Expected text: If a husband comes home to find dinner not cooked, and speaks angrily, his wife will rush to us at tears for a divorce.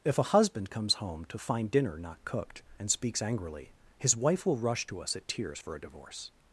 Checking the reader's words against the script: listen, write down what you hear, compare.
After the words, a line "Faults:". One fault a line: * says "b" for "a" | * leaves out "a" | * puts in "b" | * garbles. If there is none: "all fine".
If a husband comes home to find dinner not cooked, and speaks angrily, his wife will rush to us at tears for a divorce.
Faults:
all fine